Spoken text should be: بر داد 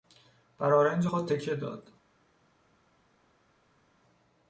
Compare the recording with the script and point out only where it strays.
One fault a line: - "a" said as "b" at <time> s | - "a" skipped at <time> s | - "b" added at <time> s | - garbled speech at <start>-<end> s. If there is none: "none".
- "آرنج خود تکه" added at 0.7 s